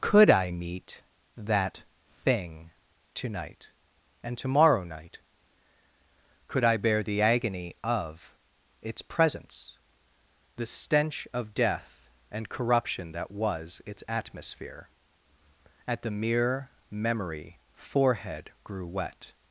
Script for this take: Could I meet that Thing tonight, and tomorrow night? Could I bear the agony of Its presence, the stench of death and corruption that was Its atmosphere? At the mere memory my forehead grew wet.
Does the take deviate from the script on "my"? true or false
true